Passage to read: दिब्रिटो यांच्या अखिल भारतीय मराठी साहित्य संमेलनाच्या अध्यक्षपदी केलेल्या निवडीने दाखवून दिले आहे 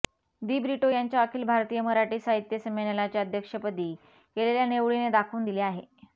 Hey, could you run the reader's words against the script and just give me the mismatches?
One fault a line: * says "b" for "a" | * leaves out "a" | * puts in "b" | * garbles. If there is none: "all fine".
all fine